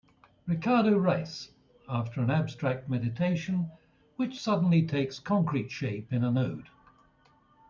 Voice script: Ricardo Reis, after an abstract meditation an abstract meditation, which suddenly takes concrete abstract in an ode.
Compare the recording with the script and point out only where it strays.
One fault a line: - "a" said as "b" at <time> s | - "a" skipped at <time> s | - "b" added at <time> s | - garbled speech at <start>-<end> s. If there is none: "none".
- "an abstract meditation" skipped at 3.7 s
- "abstract" said as "shape" at 5.7 s